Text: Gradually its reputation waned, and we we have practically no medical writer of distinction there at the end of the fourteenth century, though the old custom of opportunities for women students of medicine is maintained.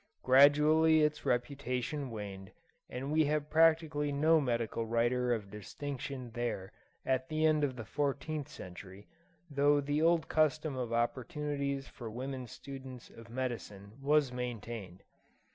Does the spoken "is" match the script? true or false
false